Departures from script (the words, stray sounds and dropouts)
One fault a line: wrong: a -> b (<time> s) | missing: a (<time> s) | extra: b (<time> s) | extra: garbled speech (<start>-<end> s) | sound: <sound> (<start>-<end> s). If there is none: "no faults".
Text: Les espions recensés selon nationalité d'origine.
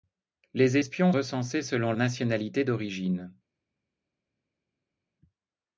no faults